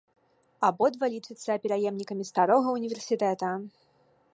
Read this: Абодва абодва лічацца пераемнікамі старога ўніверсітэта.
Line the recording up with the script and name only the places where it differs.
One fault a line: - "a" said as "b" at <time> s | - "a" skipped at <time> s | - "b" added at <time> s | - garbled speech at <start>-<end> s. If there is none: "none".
- "абодва" skipped at 1.1 s